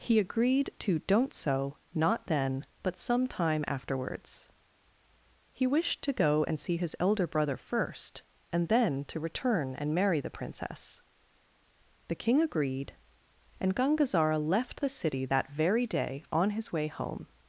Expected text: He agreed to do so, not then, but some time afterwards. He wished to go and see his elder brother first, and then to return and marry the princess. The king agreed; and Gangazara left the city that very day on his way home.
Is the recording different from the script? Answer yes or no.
yes